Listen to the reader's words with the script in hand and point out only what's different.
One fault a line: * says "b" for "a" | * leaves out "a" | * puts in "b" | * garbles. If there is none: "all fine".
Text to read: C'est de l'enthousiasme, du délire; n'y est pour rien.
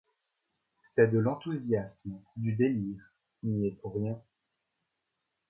all fine